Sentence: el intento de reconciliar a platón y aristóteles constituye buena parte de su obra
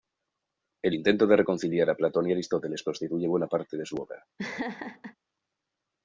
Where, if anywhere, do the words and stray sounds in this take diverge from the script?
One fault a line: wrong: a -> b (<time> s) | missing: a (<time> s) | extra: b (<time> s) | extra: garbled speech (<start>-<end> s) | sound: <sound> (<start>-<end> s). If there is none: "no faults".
sound: laugh (4.4-5.2 s)